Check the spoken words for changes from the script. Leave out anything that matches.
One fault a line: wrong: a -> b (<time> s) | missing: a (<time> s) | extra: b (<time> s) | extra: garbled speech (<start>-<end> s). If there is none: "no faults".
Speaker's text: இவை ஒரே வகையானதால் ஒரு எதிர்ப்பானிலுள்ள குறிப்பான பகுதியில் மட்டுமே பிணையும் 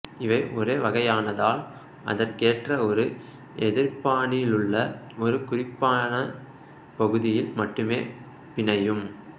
extra: அதற்கேற்ற (2.0 s)
extra: ஒரு (5.2 s)